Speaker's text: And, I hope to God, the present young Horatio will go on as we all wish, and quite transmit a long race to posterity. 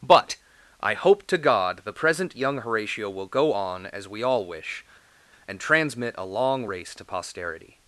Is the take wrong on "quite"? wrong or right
wrong